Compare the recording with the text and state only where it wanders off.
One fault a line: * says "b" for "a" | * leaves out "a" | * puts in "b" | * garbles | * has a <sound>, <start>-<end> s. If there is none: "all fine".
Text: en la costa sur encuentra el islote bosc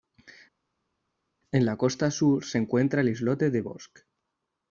* puts in "se"
* puts in "de"